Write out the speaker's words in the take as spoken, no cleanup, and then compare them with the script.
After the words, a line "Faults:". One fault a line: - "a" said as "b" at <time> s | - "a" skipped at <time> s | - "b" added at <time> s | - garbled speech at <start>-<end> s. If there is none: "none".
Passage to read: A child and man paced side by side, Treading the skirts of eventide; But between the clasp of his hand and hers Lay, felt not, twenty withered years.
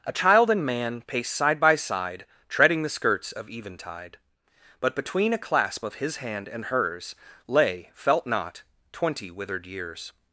A child and man paced side by side, Treading the skirts of eventide; But between a clasp of his hand and hers Lay, felt not, twenty withered years.
Faults:
- "the" said as "a" at 5.3 s